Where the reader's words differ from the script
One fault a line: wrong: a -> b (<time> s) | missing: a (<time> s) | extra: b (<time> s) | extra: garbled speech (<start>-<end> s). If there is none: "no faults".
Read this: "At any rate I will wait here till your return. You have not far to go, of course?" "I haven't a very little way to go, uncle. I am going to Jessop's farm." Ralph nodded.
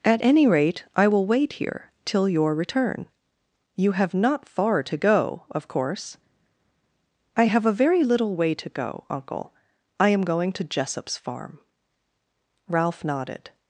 wrong: haven't -> have (7.4 s)